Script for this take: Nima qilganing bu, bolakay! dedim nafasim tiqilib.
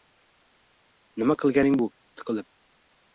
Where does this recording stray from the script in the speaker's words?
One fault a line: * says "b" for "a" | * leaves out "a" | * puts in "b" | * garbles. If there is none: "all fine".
* leaves out "bolakay dedim nafasim"